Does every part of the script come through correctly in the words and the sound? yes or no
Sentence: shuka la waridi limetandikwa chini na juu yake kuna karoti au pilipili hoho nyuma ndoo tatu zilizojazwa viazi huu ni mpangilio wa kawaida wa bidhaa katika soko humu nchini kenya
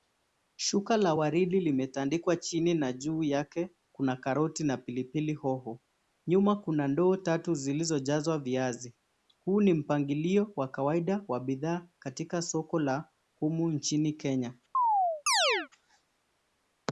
no